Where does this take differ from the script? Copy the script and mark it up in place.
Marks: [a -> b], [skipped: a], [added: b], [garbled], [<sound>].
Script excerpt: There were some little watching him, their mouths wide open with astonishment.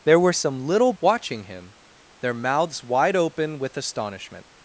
There were some little watching him, their mouths wide open with astonishment.